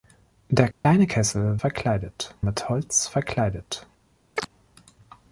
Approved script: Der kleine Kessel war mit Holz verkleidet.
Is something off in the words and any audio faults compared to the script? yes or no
yes